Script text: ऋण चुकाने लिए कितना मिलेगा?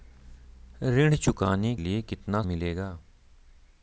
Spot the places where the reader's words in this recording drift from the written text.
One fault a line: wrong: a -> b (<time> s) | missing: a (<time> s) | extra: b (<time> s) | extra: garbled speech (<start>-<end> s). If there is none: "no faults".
no faults